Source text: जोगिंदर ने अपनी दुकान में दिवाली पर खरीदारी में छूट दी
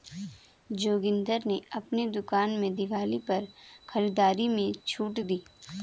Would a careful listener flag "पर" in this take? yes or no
no